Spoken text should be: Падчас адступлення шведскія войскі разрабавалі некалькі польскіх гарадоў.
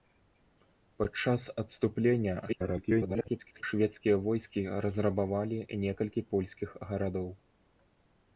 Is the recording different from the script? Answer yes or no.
yes